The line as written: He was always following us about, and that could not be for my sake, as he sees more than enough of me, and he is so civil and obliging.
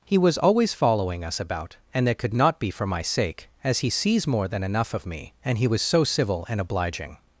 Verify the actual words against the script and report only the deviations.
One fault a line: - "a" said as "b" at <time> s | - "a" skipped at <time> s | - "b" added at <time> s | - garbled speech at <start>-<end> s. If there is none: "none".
- "is" said as "was" at 5.7 s